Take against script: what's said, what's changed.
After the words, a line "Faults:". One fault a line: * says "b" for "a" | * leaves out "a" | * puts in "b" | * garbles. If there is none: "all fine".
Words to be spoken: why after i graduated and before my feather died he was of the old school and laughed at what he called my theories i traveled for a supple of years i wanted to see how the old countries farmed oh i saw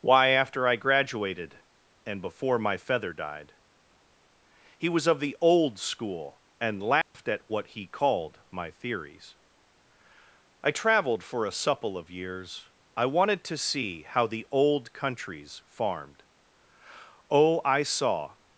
why after i graduated and before my feather died he was of the old school and laughed at what he called my theories i traveled for a supple of years i wanted to see how the old countries farmed oh i saw
Faults:
all fine